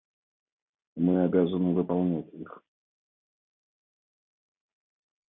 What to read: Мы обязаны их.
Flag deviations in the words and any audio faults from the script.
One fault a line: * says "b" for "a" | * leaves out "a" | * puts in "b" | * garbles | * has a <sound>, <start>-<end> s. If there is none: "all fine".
* puts in "выполнять"